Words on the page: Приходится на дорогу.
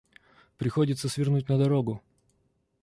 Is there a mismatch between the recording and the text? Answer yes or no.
yes